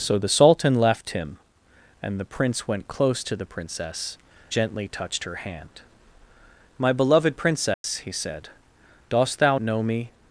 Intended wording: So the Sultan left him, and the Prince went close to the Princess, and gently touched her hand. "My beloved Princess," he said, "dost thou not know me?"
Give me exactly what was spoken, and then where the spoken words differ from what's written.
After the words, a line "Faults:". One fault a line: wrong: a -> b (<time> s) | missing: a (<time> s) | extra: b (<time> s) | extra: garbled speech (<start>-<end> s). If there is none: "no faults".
So the Sultan left him, and the Prince went close to the Princess, gently touched her hand. "My beloved Princess," he said, "dost thou know me?"
Faults:
missing: and (4.2 s)
missing: not (9.6 s)